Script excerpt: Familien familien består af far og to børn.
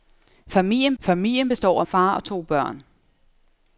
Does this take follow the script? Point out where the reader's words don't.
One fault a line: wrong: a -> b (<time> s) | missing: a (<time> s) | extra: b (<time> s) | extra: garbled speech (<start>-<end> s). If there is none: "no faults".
no faults